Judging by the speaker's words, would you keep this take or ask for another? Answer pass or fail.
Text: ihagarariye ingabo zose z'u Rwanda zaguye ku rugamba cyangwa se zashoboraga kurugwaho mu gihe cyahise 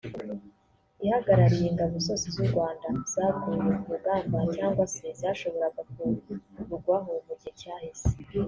pass